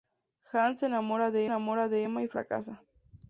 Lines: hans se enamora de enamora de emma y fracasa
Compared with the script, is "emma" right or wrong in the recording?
right